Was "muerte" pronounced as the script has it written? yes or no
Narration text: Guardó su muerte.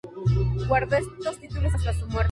yes